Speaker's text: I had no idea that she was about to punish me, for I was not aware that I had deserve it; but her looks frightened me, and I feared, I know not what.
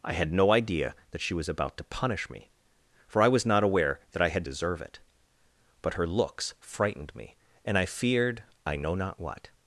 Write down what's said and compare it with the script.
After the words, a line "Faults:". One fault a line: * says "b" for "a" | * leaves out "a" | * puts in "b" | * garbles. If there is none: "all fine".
I had no idea that she was about to punish me, for I was not aware that I had deserve it; but her looks frightened me, and I feared, I know not what.
Faults:
all fine